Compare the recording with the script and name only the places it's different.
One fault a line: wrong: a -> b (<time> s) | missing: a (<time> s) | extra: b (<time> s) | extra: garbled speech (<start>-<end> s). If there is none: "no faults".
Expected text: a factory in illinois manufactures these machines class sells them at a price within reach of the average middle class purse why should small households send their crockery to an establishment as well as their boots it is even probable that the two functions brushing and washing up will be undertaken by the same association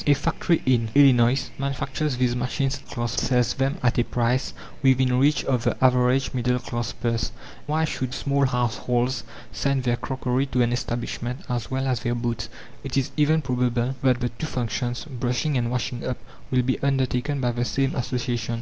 no faults